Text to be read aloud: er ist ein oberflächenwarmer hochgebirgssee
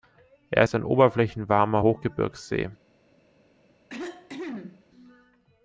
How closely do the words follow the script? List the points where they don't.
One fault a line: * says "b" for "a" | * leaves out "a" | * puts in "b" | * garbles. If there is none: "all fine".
all fine